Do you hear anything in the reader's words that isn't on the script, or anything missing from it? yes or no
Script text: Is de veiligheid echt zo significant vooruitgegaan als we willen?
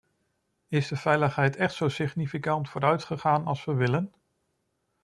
no